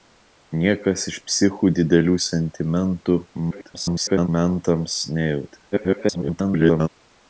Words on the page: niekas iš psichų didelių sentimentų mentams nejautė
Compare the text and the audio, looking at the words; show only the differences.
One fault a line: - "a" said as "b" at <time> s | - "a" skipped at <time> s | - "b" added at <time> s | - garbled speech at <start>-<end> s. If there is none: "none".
- garbled speech at 3.5-4.3 s
- garbled speech at 5.7-6.9 s